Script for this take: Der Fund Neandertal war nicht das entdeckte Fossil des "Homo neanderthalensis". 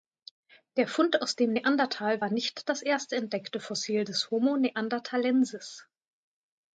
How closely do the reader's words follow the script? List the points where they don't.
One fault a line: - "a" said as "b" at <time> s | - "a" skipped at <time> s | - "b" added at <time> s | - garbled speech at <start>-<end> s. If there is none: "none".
- "aus dem" added at 1.2 s
- "erste" added at 2.8 s